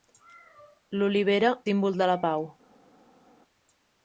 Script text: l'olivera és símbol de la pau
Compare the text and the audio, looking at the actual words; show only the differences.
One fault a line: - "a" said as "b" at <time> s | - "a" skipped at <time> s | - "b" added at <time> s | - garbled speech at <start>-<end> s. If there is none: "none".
- "és" skipped at 1.5 s